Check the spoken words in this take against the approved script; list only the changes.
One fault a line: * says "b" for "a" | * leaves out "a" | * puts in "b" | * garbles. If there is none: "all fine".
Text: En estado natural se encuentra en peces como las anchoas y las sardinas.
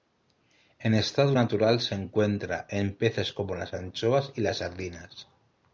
all fine